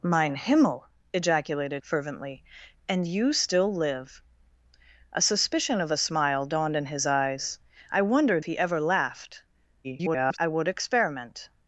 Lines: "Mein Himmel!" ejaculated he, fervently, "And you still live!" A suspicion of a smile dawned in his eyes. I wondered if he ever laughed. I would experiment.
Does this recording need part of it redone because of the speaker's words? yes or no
yes